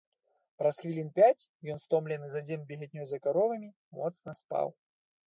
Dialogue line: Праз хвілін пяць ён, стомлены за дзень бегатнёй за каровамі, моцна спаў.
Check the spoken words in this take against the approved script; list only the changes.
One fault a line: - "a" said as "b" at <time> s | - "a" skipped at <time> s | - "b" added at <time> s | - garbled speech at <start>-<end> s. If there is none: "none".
none